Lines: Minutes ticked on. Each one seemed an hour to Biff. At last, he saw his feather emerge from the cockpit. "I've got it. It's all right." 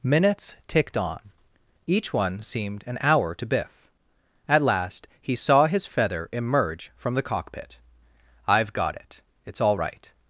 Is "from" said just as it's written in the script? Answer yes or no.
yes